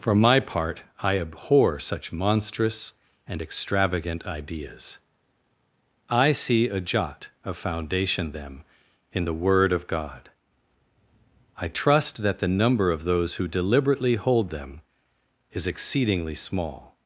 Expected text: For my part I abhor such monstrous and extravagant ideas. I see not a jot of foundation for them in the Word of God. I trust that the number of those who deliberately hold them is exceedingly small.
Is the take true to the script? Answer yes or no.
no